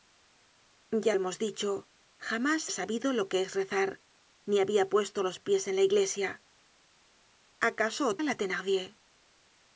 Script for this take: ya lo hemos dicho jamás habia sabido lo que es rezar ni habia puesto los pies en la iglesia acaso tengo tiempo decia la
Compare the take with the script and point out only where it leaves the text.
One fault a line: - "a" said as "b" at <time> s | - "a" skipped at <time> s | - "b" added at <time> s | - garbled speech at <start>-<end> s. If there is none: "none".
- "lo" skipped at 1.1 s
- "habia" skipped at 2.7 s
- "tengo tiempo decia" skipped at 8.2 s